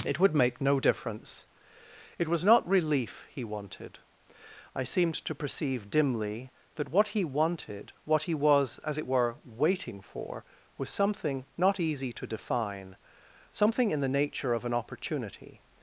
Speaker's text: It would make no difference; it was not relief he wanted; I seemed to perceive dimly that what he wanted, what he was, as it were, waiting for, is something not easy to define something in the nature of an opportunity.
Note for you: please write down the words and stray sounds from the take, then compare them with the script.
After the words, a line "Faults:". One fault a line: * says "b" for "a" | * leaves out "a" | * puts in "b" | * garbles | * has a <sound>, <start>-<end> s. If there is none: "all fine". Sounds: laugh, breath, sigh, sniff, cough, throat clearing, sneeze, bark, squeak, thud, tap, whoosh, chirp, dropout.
It would make no difference; it was not relief he wanted; I seemed to perceive dimly that what he wanted, what he was, as it were, waiting for, was something not easy to define something in the nature of an opportunity.
Faults:
* says "was" for "is"